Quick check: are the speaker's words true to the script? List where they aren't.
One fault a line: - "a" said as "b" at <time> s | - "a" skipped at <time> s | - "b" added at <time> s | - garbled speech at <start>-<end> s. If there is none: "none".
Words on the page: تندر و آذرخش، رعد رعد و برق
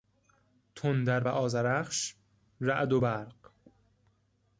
- "رعد" skipped at 2.9 s